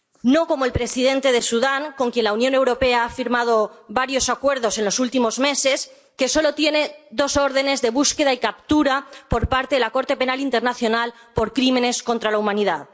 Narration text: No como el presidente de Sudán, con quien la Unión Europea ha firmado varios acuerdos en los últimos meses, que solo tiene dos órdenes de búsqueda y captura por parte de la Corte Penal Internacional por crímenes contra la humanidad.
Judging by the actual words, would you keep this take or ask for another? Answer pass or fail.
pass